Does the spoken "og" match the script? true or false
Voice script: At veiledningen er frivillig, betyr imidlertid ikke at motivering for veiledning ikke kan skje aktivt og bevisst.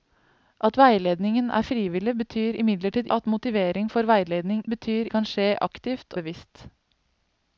false